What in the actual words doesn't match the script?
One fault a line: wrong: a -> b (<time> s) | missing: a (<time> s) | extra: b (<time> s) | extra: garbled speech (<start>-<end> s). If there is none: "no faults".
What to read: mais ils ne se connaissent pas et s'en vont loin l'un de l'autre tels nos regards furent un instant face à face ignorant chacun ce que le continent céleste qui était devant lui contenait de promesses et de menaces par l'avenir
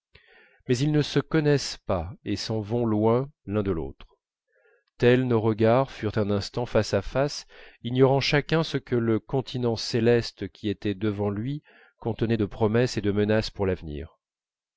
wrong: par -> pour (13.5 s)